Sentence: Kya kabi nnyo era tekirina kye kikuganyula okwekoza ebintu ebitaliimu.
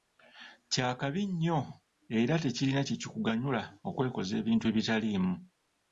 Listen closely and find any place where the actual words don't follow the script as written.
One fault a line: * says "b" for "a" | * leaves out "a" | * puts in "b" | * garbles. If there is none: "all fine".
all fine